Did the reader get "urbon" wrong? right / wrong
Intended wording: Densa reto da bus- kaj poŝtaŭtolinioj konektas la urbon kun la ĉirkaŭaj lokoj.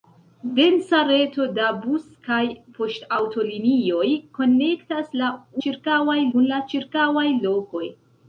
wrong